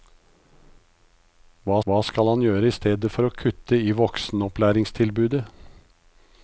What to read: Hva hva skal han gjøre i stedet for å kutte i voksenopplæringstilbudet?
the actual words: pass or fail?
pass